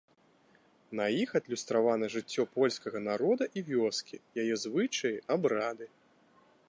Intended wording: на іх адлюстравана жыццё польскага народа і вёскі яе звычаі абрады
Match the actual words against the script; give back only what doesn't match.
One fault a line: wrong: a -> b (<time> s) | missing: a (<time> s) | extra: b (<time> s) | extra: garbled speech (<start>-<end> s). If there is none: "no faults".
no faults